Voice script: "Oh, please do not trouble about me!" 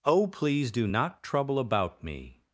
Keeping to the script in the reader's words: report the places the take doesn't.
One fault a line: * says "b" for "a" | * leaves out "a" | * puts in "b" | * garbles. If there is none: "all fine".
all fine